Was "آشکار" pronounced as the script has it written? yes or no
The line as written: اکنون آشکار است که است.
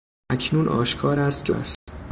yes